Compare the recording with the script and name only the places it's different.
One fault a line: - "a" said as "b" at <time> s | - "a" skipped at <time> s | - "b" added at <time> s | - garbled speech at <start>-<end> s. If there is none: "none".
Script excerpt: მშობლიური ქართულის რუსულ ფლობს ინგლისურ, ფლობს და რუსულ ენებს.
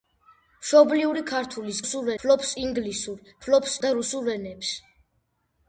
none